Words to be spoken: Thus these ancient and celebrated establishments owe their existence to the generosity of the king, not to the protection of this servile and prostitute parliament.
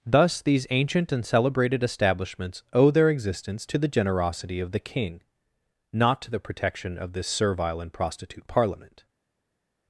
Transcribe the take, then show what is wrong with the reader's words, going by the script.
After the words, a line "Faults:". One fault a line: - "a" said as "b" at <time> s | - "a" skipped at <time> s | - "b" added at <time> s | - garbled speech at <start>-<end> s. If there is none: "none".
Thus these ancient and celebrated establishments owe their existence to the generosity of the king, not to the protection of this servile and prostitute parliament.
Faults:
none